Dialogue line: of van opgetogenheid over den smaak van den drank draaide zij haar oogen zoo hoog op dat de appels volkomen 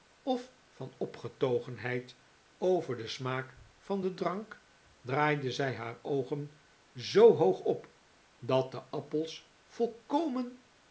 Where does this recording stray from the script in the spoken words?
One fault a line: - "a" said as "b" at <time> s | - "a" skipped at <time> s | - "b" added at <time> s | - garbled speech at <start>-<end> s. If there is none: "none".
none